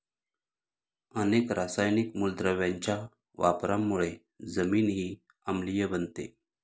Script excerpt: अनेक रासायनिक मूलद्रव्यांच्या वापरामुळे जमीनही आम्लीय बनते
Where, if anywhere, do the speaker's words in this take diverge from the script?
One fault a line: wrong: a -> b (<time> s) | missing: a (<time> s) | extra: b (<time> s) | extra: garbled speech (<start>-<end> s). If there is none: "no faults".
no faults